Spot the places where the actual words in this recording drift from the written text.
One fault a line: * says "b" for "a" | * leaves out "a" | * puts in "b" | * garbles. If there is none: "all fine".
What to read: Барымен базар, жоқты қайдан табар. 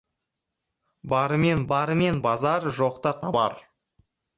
* puts in "барымен"
* leaves out "қайдан"